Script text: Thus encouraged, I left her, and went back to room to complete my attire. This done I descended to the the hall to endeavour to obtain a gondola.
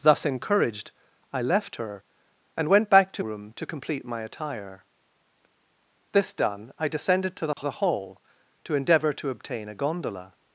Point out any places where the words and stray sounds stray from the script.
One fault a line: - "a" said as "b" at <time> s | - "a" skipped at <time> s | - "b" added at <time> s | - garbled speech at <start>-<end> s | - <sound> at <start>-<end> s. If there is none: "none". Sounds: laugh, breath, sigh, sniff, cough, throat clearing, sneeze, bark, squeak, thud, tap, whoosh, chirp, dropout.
- dropout at 7.5-7.6 s